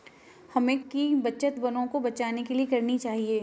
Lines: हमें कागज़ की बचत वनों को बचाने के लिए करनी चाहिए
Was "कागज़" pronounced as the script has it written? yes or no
no